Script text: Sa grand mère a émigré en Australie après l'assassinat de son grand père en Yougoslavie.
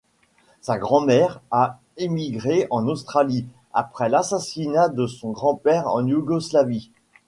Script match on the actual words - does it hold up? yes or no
yes